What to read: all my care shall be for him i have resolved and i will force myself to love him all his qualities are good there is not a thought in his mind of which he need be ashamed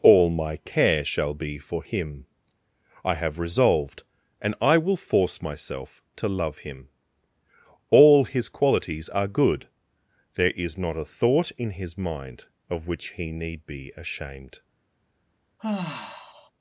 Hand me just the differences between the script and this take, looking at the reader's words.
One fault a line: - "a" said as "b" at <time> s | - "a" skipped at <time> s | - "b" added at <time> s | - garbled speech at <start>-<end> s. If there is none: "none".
none